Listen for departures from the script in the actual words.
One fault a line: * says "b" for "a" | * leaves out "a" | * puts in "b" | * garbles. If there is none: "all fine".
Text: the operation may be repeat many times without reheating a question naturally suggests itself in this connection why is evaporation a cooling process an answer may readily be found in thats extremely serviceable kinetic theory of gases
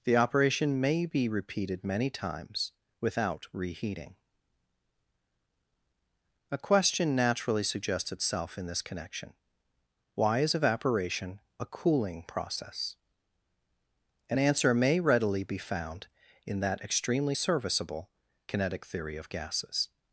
* says "repeated" for "repeat"
* says "that" for "thats"